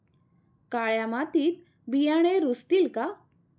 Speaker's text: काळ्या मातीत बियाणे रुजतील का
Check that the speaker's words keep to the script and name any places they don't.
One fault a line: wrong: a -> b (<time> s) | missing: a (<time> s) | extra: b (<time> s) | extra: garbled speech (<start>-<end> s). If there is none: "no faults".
no faults